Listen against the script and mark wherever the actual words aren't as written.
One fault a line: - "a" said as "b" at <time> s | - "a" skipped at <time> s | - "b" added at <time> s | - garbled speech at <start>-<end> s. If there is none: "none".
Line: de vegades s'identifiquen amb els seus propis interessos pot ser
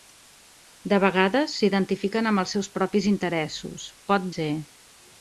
none